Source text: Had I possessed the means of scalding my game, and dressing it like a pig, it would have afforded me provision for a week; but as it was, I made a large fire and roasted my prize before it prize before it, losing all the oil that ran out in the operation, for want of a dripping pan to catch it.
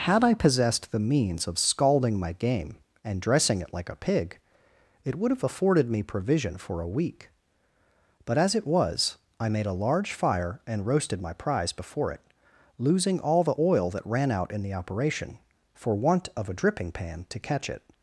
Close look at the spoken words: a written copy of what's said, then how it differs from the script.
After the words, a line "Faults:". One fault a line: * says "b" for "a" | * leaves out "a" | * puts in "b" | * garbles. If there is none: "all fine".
Had I possessed the means of scalding my game, and dressing it like a pig, it would have afforded me provision for a week; but as it was, I made a large fire and roasted my prize before it, losing all the oil that ran out in the operation, for want of a dripping pan to catch it.
Faults:
* leaves out "prize before it"